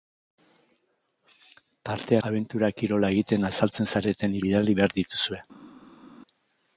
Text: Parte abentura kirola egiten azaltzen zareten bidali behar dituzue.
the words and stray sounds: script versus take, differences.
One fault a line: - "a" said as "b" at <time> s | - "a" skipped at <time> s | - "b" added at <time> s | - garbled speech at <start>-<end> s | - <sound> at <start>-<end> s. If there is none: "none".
none